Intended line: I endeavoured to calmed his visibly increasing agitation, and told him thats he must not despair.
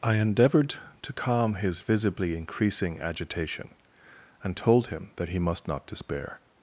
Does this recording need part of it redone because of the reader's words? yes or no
yes